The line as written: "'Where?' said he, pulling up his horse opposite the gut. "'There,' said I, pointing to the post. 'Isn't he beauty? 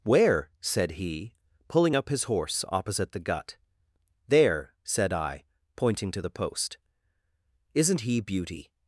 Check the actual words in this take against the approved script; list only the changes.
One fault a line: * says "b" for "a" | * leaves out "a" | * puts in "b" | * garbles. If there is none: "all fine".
all fine